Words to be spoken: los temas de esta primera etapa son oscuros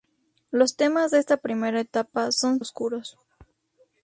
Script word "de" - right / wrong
right